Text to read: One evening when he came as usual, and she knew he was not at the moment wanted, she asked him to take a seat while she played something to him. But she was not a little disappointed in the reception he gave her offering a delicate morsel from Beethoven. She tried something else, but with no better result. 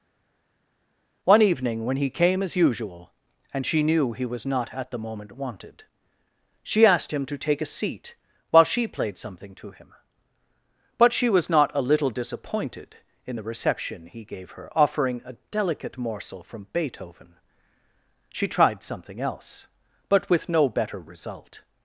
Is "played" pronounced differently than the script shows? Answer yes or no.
no